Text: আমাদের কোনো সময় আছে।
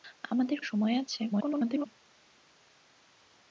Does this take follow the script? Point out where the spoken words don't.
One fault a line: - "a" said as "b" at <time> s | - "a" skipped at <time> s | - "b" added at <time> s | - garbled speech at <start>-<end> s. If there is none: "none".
- "কোনো" skipped at 0.6 s
- garbled speech at 1.3-1.9 s